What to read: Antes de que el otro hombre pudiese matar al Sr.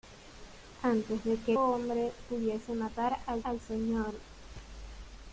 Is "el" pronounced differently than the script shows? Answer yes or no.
yes